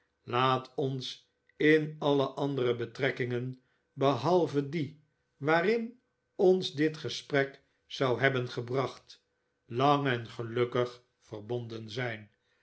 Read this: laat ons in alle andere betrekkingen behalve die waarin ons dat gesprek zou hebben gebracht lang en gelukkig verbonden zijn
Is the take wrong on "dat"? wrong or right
wrong